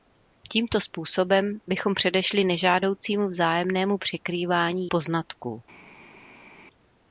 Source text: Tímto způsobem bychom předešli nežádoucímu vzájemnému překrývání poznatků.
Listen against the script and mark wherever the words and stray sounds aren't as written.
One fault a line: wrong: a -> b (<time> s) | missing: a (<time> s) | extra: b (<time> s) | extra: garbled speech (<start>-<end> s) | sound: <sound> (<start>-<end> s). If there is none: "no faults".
no faults